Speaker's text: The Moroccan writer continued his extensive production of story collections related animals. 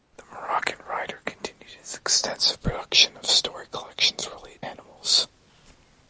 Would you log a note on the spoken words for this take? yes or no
no